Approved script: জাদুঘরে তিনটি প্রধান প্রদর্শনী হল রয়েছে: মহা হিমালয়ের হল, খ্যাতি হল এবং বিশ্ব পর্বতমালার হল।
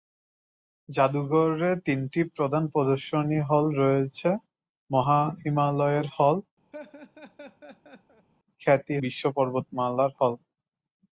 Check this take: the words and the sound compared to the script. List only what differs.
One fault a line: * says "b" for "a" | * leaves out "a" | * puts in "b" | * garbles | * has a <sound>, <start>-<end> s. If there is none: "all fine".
* has a laugh, 6.7-8.3 s
* leaves out "হল এবং"